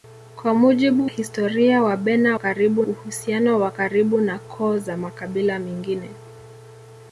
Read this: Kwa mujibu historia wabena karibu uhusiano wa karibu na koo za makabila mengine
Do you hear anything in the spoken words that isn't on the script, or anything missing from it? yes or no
no